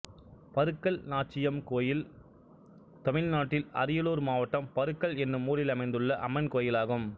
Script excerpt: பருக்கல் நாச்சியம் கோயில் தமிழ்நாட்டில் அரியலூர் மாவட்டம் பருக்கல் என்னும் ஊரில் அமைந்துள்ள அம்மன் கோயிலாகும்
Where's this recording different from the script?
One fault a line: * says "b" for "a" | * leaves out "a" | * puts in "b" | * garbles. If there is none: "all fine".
all fine